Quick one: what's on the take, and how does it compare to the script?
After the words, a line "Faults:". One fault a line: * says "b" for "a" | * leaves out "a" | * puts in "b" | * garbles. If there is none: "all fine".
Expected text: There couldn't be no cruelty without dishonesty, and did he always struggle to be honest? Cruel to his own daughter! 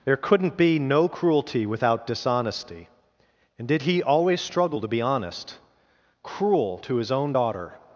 There couldn't be no cruelty without dishonesty, and did he always struggle to be honest? Cruel to his own daughter!
Faults:
all fine